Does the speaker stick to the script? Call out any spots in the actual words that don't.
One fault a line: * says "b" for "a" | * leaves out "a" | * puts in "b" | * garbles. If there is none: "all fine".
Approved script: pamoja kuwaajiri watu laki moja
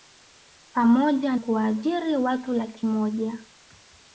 all fine